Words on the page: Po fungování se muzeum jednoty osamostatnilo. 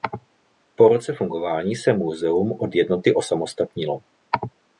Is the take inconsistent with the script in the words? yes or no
yes